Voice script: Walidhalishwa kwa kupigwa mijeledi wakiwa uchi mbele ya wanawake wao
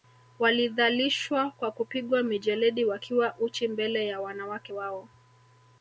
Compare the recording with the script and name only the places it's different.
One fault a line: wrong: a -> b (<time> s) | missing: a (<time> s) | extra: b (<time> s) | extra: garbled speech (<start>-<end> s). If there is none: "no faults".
no faults